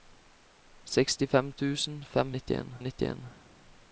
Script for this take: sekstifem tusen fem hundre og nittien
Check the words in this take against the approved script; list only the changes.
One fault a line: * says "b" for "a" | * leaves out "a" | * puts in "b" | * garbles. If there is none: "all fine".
* says "nittien" for "hundre"